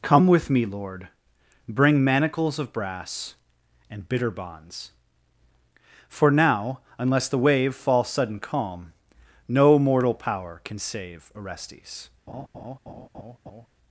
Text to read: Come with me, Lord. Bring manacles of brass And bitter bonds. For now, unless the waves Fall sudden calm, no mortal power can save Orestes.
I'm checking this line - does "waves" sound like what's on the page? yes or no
no